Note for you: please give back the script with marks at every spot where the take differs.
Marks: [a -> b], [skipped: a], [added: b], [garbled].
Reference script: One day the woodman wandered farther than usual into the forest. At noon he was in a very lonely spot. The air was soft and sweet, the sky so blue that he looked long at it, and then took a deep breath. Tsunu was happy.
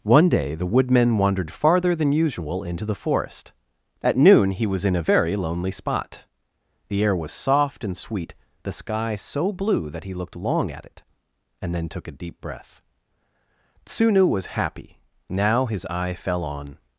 One day the woodman wandered farther than usual into the forest. At noon he was in a very lonely spot. The air was soft and sweet, the sky so blue that he looked long at it, and then took a deep breath. Tsunu was happy. [added: Now his eye fell on]